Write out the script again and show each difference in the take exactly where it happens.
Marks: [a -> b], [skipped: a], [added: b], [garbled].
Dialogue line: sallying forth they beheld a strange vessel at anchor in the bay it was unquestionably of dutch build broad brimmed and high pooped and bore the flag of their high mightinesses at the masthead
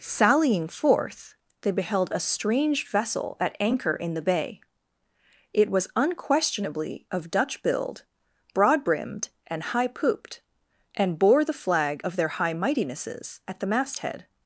sallying forth they beheld a strange vessel at anchor in the bay it was unquestionably of dutch build broad brimmed and high pooped and bore the flag of their high mightinesses at the masthead